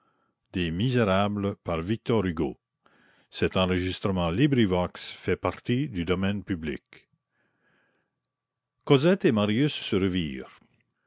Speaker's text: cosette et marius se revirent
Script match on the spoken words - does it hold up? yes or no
no